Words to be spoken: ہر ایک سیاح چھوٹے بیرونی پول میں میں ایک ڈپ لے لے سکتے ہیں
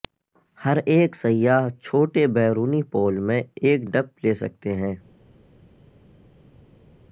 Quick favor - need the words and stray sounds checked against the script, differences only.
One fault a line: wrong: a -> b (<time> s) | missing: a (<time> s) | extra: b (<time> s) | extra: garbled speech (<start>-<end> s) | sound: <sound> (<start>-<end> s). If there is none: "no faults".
missing: میں (3.4 s)
missing: لے (4.3 s)